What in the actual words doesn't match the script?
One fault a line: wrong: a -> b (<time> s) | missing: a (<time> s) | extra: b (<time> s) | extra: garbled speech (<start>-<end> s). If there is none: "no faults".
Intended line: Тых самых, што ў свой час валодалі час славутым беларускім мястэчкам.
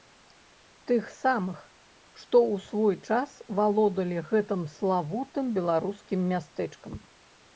wrong: час -> гэтым (4.3 s)